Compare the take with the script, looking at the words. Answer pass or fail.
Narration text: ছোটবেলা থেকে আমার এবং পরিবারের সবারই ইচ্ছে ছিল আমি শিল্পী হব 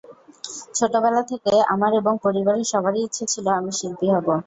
pass